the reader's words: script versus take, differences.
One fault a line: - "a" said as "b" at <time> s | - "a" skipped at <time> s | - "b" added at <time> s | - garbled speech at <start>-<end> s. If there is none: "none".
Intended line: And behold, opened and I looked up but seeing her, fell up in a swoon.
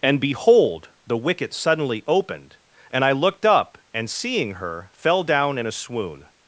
- "the wicket suddenly" added at 1.1 s
- "but" said as "and" at 3.9 s
- "up" said as "down" at 5.2 s